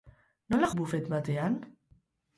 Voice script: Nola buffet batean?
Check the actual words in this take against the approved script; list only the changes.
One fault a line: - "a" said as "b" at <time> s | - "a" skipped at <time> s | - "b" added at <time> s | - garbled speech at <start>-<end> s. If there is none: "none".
none